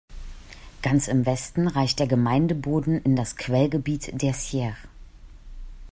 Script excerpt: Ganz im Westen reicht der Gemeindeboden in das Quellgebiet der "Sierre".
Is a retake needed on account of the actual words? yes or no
no